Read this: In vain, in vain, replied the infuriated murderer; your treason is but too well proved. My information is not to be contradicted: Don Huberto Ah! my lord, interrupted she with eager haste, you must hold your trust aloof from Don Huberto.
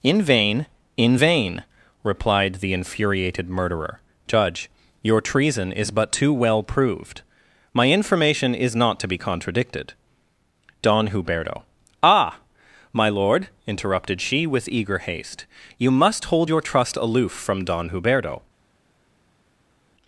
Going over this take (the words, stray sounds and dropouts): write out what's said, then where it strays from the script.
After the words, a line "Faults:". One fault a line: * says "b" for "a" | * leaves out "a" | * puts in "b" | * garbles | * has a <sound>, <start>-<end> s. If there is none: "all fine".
In vain, in vain, replied the infuriated murderer; judge your treason is but too well proved. My information is not to be contradicted: Don Huberto Ah! my lord, interrupted she with eager haste, you must hold your trust aloof from Don Huberto.
Faults:
* puts in "judge"